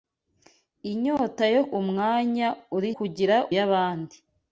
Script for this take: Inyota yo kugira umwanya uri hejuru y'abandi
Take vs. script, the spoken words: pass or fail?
fail